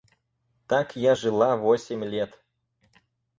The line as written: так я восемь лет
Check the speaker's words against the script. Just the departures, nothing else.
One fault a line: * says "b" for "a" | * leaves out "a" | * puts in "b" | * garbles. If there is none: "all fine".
* puts in "жила"